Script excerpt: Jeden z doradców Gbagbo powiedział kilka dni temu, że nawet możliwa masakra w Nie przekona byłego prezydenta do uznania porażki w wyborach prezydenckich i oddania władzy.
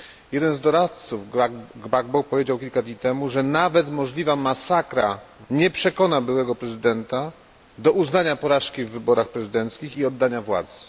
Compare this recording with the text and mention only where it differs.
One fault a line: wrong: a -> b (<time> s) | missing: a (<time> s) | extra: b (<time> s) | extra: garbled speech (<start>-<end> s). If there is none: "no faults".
no faults